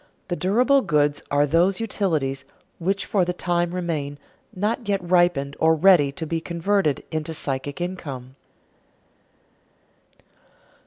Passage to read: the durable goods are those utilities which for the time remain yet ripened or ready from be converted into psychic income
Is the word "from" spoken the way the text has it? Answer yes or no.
no